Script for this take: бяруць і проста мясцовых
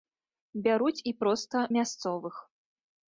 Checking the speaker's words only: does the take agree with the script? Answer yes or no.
yes